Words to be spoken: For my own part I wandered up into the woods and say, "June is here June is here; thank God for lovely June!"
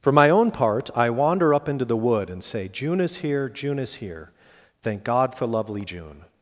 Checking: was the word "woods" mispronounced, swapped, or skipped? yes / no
yes